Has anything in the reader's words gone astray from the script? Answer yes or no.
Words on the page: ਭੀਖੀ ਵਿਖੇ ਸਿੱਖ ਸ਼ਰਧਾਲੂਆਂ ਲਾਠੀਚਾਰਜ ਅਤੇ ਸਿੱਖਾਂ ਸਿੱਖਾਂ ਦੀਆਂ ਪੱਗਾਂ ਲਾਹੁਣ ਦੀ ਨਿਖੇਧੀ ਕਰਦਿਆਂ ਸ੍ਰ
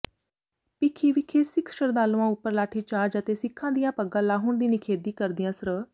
yes